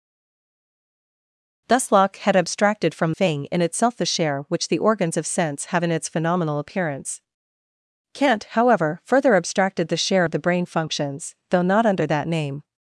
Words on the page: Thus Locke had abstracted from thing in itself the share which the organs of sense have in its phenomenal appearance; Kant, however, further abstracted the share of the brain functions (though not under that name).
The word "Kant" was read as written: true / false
true